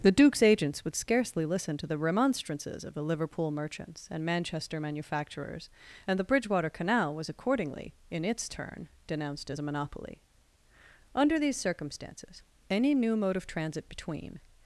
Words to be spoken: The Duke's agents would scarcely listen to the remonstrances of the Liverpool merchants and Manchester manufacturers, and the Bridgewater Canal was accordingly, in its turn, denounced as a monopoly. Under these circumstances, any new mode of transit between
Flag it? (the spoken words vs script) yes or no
no